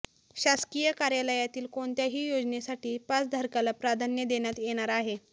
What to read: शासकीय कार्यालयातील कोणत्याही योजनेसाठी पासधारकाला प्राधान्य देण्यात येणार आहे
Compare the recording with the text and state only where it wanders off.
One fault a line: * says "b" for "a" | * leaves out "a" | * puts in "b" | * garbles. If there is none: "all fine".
all fine